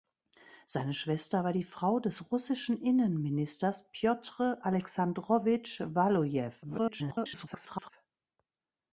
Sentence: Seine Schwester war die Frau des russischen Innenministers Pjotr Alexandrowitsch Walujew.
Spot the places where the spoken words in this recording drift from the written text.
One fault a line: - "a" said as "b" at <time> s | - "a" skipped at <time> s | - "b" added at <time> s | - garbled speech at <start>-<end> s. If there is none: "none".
- garbled speech at 6.6-7.9 s